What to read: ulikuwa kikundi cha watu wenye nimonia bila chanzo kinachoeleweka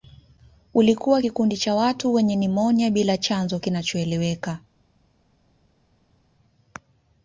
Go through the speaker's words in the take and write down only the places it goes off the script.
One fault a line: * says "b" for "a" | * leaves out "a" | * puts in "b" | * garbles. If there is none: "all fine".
all fine